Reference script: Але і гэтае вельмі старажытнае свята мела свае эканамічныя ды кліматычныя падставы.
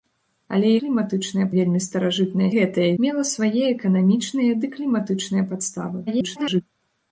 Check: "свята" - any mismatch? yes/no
yes